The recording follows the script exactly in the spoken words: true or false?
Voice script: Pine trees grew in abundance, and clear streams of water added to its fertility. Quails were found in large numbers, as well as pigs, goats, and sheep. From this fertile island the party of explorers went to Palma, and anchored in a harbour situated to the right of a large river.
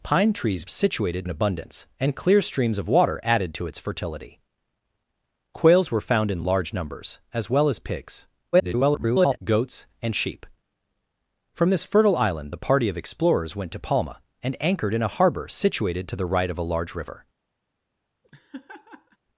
false